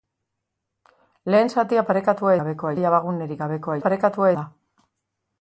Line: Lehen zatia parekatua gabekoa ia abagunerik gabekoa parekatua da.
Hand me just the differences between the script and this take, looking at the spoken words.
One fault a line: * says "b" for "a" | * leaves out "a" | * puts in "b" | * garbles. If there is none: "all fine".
all fine